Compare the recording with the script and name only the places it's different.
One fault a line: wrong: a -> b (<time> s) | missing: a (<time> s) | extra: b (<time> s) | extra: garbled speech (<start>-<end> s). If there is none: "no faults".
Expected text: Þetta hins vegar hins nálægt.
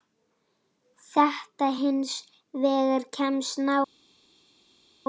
wrong: hins -> kemst (3.2 s)